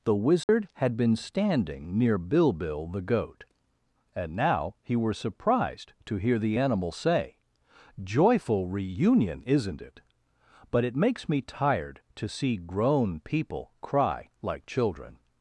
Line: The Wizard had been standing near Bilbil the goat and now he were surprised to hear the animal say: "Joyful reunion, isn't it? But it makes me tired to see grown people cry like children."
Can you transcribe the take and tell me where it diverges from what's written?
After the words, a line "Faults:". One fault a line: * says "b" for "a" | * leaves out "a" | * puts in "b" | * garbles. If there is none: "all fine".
The Wizard had been standing near Bilbil the goat and now he were surprised to hear the animal say: "Joyful reunion, isn't it? But it makes me tired to see grown people cry like children."
Faults:
all fine